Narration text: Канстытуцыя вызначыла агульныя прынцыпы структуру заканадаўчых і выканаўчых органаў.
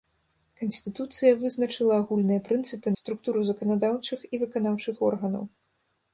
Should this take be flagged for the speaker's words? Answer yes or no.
no